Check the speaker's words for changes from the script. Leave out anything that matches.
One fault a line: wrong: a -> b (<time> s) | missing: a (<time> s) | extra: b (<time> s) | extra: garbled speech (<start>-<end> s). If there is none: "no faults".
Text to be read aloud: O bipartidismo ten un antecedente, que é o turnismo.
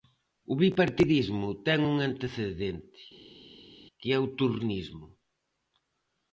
no faults